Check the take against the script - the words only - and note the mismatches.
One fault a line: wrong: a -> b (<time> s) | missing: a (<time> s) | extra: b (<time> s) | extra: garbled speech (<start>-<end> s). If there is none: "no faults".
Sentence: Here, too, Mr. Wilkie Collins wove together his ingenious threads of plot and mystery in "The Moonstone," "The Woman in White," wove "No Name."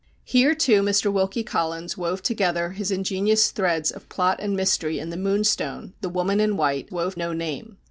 no faults